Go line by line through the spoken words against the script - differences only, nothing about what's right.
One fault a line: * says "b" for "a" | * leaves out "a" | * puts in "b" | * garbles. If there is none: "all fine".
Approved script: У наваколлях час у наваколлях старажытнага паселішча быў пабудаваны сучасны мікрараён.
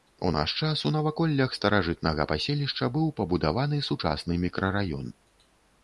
* says "наш" for "наваколлях"